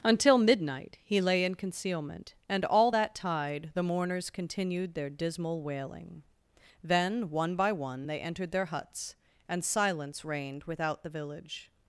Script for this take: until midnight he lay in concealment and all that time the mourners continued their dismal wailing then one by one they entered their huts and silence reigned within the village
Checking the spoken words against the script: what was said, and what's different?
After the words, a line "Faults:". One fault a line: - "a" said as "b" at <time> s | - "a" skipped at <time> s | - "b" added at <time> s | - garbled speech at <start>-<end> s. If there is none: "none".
until midnight he lay in concealment and all that tide the mourners continued their dismal wailing then one by one they entered their huts and silence reigned without the village
Faults:
- "time" said as "tide" at 3.1 s
- "within" said as "without" at 10.6 s